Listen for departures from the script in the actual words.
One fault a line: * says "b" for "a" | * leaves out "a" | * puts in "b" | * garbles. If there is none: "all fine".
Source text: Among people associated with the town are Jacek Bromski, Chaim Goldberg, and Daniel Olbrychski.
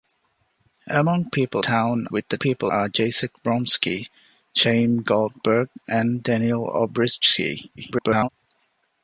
* says "town" for "associated"
* says "people" for "town"
* garbles